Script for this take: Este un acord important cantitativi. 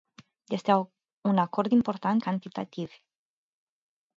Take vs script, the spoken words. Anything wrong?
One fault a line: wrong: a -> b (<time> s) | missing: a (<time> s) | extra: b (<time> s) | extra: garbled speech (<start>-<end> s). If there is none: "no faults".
no faults